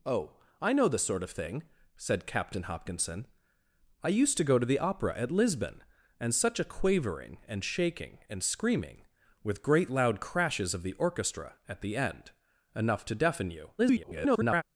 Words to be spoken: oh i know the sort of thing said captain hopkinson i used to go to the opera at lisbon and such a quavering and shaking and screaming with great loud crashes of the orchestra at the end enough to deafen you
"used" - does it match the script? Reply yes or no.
yes